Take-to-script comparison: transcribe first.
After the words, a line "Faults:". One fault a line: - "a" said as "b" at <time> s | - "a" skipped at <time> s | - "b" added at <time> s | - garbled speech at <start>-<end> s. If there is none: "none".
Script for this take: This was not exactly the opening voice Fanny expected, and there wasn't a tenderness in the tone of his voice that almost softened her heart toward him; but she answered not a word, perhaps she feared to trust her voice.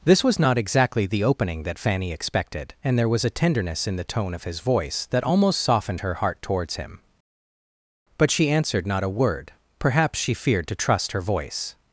This was not exactly the opening that Fanny expected, and there was a tenderness in the tone of his voice that almost softened her heart towards him; but she answered not a word, perhaps she feared to trust her voice.
Faults:
- "voice" said as "that" at 1.6 s
- "wasn't" said as "was" at 3.1 s
- "toward" said as "towards" at 6.4 s